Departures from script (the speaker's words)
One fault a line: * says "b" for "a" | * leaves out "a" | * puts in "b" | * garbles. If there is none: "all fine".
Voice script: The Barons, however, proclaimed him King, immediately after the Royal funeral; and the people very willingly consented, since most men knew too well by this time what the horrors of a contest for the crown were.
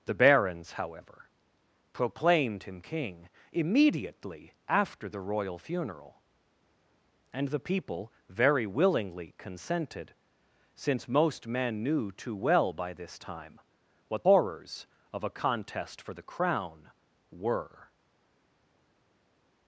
* leaves out "the"